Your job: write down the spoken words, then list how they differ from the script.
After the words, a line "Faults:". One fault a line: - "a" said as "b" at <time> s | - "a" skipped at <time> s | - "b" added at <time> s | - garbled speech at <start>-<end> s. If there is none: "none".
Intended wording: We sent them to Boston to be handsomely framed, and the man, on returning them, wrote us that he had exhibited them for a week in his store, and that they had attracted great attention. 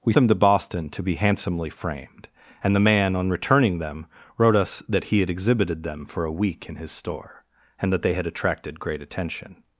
We them to Boston to be handsomely framed, and the man, on returning them, wrote us that he had exhibited them for a week in his store, and that they had attracted great attention.
Faults:
- "sent" skipped at 0.1 s